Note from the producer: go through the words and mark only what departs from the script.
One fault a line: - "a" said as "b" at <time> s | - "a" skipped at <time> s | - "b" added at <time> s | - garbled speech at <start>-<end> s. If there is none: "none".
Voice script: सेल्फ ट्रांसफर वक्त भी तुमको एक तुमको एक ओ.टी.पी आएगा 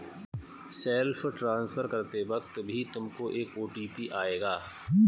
- "करते" added at 1.8 s
- "तुमको एक" skipped at 3.6 s